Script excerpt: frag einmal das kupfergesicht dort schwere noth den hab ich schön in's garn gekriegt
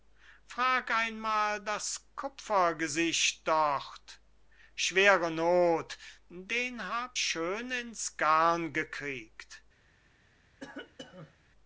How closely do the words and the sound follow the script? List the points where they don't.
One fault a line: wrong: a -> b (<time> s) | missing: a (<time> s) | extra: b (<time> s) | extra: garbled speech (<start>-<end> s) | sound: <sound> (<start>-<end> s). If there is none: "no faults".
missing: ich (7.2 s)
sound: cough (10.6-11.5 s)